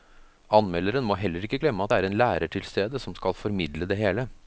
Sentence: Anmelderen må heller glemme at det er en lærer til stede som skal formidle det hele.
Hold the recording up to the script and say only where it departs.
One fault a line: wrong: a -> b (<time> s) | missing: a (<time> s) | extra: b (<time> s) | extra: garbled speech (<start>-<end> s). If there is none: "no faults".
extra: ikke (1.4 s)